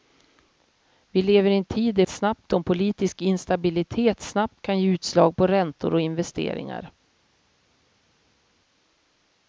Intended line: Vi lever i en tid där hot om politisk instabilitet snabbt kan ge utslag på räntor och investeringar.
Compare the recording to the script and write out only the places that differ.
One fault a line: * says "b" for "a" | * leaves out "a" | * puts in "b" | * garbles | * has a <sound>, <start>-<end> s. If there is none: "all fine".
* says "snabbt" for "hot"